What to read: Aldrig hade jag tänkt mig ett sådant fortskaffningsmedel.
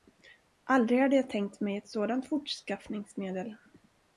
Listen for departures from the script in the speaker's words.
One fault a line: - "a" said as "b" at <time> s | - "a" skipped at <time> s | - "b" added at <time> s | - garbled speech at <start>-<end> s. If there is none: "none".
none